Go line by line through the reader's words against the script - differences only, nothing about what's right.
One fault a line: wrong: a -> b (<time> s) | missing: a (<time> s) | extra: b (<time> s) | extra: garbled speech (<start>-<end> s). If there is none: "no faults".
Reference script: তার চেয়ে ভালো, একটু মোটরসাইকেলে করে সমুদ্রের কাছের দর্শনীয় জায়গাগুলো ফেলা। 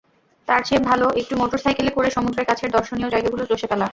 extra: চষে (3.4 s)